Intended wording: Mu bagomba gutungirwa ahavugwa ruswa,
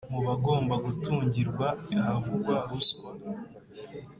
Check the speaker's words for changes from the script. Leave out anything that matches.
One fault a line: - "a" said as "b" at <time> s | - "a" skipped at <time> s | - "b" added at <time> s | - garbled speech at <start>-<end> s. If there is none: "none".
none